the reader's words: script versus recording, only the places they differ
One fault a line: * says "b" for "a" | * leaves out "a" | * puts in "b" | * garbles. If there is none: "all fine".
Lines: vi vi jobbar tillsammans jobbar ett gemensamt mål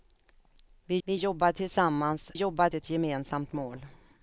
all fine